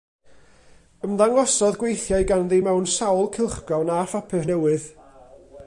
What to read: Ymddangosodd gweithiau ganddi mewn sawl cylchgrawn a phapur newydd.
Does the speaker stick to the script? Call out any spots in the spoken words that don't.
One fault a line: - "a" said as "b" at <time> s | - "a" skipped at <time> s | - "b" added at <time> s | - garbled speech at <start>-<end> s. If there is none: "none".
none